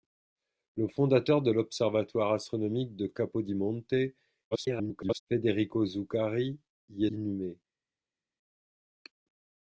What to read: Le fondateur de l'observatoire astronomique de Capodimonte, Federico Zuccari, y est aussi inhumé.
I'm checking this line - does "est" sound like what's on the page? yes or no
no